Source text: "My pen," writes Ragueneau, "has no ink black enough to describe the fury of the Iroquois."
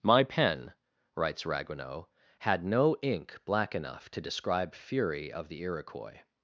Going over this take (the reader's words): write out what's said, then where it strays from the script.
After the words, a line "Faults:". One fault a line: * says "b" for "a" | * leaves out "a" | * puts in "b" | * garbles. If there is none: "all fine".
"My pen," writes Ragueneau, "had no ink black enough to describe fury of the Iroquois."
Faults:
* says "had" for "has"
* leaves out "the"